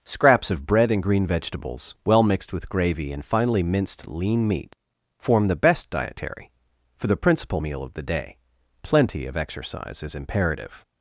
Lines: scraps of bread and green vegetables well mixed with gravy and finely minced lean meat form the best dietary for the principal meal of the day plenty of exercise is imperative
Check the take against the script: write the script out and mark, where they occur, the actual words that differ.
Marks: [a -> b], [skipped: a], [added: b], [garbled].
scraps of bread and green vegetables well mixed with gravy and finely minced lean meat form the best dietary for the principal meal of the day plenty of exercise is imperative